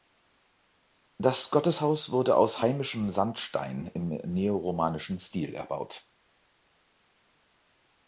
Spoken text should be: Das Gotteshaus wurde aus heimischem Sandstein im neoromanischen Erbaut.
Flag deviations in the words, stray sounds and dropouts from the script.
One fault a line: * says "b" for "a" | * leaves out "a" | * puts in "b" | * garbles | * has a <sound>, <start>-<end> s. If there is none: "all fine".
* puts in "Stil"